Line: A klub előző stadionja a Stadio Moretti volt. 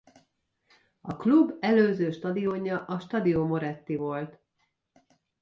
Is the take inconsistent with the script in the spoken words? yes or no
no